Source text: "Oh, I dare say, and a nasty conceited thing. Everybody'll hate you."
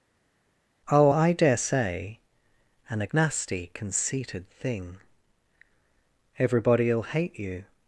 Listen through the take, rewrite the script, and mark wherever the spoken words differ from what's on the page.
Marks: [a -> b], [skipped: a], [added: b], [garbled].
"Oh, I dare say, and a nasty conceited thing. Everybody'll hate you."